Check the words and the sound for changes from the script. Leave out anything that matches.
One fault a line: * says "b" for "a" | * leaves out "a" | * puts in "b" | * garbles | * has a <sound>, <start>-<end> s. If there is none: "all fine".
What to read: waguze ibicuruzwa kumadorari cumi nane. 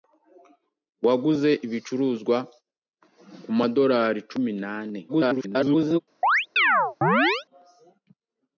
* garbles
* has a chirp, 6.2-7.5 s